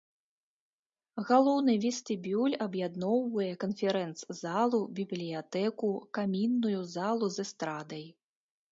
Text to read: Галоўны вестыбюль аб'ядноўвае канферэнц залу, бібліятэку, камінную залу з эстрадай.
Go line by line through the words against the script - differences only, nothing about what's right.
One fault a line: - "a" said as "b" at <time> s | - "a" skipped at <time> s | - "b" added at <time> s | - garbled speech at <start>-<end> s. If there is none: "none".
none